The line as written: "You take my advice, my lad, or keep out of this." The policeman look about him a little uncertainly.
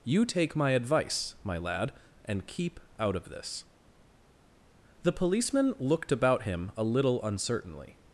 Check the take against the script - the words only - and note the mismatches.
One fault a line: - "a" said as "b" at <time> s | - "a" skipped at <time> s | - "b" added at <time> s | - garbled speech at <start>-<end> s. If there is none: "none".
- "or" said as "and" at 2.2 s
- "look" said as "looked" at 5.8 s